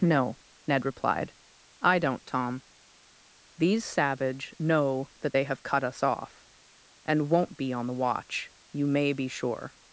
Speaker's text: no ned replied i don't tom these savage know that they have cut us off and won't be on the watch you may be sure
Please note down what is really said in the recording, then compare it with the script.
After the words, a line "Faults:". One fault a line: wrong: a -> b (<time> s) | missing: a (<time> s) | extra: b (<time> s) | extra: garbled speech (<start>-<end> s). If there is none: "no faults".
no ned replied i don't tom these savage know that they have cut us off and won't be on the watch you may be sure
Faults:
no faults